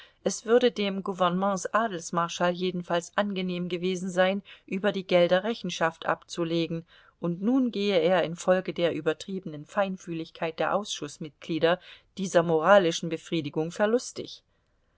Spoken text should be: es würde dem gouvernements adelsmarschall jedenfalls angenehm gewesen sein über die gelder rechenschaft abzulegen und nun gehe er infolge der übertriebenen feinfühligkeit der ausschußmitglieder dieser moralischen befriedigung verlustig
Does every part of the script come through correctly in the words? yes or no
yes